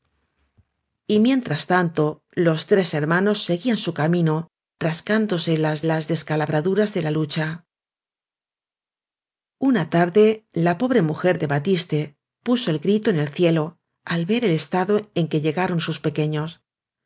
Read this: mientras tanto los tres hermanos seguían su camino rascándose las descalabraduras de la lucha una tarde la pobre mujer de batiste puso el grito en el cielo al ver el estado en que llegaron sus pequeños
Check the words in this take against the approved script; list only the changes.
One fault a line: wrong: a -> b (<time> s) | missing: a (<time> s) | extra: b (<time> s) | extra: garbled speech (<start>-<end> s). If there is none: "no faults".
extra: las (5.8 s)